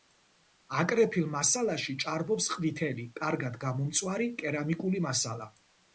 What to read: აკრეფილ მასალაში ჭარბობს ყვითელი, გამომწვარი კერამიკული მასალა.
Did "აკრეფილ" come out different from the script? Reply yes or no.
no